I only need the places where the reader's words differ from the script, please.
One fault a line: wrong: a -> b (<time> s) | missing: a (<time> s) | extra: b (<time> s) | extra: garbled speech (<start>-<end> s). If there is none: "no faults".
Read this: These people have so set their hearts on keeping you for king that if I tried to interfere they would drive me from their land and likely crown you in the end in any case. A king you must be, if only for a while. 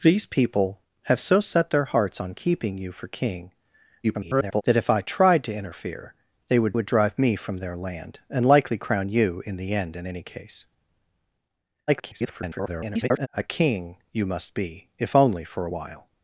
extra: garbled speech (4.0-4.6 s)
extra: would (6.7 s)
extra: garbled speech (11.9-13.3 s)